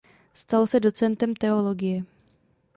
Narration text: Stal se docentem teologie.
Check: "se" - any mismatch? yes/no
no